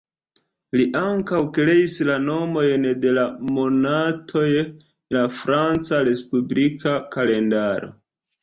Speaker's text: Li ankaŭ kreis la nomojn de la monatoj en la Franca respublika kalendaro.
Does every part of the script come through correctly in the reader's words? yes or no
no